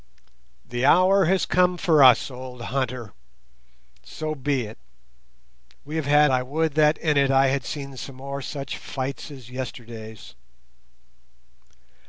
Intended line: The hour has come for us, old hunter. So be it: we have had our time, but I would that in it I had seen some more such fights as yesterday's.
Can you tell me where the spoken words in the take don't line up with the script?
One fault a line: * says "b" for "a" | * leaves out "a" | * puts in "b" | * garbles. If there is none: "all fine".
* leaves out "our time but"